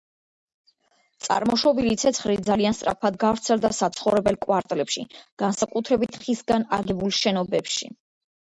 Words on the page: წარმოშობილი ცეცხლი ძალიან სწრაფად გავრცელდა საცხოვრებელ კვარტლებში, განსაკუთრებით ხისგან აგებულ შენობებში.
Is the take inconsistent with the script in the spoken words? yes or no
no